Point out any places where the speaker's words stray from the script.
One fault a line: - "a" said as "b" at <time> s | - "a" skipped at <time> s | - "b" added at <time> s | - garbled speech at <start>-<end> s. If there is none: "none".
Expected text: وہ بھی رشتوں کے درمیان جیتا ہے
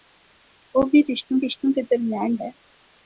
- "رشتوں" added at 1.4 s
- "جیتا" skipped at 2.3 s